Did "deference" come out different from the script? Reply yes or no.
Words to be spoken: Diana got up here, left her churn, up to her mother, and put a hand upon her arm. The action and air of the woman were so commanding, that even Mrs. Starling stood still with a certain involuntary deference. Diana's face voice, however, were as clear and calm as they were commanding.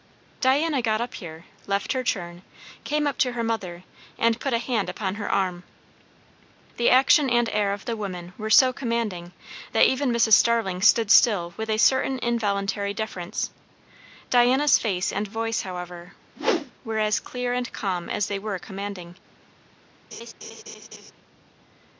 no